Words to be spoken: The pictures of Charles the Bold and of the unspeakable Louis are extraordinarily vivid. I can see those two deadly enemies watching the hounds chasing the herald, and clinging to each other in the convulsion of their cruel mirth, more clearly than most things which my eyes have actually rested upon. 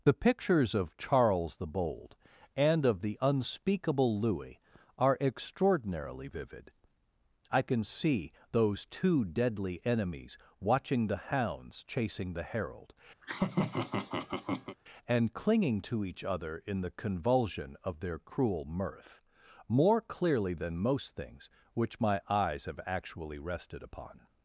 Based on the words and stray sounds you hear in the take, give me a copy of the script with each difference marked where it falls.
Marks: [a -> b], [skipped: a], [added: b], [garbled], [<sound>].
The pictures of Charles the Bold and of the unspeakable Louis are extraordinarily vivid. I can see those two deadly enemies watching the hounds chasing the herald, [laugh] and clinging to each other in the convulsion of their cruel mirth, more clearly than most things which my eyes have actually rested upon.